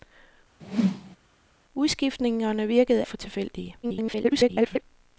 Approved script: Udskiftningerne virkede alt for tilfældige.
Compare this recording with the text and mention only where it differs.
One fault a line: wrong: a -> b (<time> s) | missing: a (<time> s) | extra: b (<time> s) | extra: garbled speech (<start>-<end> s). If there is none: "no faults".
missing: alt (3.0 s)
extra: garbled speech (3.8-4.8 s)